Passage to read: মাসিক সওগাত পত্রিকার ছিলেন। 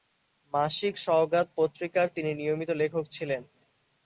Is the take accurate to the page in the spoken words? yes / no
no